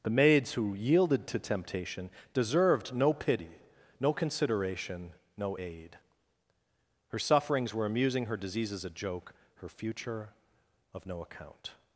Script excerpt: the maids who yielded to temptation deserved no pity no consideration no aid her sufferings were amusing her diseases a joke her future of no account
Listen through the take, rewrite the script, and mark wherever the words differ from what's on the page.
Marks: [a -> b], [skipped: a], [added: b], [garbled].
the maids who yielded to temptation deserved no pity no consideration no aid her sufferings were amusing her diseases a joke her future of no account